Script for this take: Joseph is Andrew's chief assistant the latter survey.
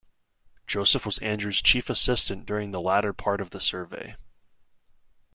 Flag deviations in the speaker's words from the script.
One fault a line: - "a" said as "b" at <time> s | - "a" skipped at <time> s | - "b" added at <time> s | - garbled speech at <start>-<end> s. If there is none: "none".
- "is" said as "was" at 1.1 s
- "during" added at 2.5 s
- "part of the" added at 3.1 s